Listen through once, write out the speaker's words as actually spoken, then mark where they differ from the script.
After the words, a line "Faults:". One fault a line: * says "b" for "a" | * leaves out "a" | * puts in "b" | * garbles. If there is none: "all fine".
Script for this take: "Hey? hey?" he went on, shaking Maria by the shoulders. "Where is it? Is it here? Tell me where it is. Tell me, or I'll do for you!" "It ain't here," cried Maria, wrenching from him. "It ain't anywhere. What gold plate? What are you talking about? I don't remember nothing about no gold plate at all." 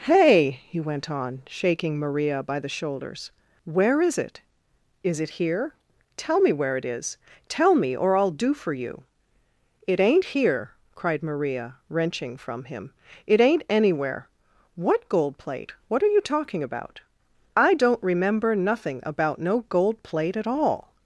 "Hey?" he went on, shaking Maria by the shoulders. "Where is it? Is it here? Tell me where it is. Tell me, or I'll do for you!" "It ain't here," cried Maria, wrenching from him. "It ain't anywhere. What gold plate? What are you talking about? I don't remember nothing about no gold plate at all."
Faults:
* leaves out "hey"